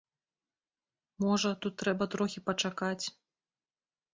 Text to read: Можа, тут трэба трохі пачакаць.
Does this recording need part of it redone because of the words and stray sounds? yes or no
no